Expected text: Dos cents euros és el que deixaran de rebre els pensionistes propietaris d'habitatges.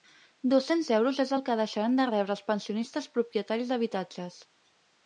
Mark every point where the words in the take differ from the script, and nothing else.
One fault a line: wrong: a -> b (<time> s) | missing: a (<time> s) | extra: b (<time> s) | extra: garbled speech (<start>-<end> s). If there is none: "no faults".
no faults